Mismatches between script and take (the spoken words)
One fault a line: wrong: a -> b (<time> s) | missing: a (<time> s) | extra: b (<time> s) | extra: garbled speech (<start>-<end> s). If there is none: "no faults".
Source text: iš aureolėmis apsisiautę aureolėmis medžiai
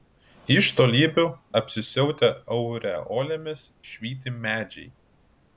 wrong: aureolėmis -> tolybių (0.8 s)
extra: švyti (3.9 s)